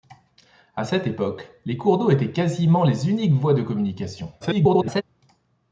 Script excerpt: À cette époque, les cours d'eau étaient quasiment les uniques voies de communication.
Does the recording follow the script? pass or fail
fail